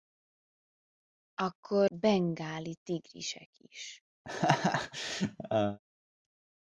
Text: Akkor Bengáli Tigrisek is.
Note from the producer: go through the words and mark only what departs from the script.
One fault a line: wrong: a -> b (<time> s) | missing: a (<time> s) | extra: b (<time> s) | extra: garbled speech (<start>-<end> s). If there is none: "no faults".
no faults